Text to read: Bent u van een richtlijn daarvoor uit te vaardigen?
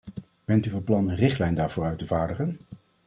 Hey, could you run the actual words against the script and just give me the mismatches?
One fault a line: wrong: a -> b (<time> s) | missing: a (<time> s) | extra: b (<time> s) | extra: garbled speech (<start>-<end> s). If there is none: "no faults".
extra: plan (0.8 s)